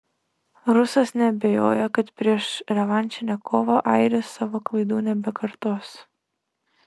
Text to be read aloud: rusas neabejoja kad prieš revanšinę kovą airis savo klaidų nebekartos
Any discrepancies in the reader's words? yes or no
no